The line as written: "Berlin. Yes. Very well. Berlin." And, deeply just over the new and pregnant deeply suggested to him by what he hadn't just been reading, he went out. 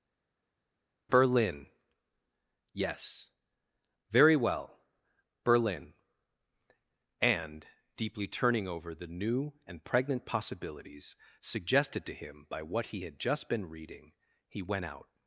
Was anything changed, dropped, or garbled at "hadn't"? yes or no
yes